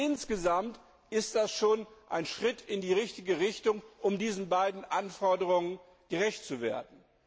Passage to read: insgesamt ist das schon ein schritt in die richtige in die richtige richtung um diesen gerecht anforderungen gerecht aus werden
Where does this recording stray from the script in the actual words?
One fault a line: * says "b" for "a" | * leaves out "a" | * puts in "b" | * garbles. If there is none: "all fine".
* leaves out "in die richtige"
* says "beiden" for "gerecht"
* says "zu" for "aus"